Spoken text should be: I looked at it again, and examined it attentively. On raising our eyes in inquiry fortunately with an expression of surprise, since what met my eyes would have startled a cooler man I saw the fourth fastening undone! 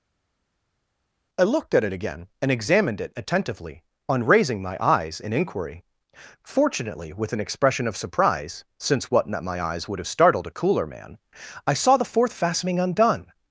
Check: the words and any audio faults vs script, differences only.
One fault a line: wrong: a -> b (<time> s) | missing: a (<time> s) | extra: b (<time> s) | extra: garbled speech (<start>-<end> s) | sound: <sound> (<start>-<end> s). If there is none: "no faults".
wrong: our -> my (4.6 s)